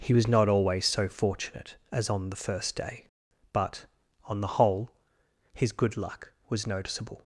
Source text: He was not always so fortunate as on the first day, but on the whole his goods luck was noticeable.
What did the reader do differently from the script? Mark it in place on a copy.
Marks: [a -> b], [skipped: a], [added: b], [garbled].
He was not always so fortunate as on the first day, but on the whole his [goods -> good] luck was noticeable.